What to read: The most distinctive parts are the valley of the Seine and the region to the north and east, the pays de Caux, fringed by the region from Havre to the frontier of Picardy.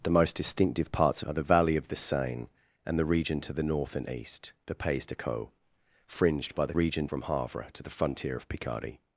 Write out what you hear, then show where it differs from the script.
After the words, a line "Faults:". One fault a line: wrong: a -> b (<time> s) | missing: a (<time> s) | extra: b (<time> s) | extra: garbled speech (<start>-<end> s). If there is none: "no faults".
The most distinctive parts are the valley of the Seine and the region to the north and east, the pays de Caux, fringed by the region from Havre to the frontier of Picardy.
Faults:
no faults